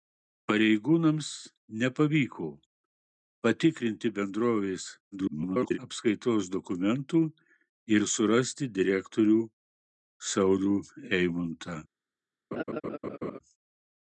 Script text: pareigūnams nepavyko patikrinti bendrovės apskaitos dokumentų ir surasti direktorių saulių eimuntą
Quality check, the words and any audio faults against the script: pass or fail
fail